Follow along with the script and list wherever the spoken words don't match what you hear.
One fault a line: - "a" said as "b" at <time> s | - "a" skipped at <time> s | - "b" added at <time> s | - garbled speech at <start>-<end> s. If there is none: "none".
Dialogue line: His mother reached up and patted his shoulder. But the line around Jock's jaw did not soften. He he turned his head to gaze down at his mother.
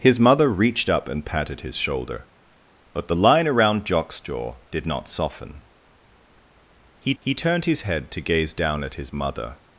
none